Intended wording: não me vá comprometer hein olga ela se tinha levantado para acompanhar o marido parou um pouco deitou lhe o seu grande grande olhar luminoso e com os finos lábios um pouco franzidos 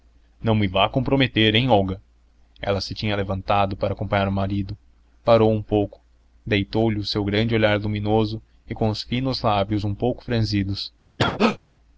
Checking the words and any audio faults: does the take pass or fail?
fail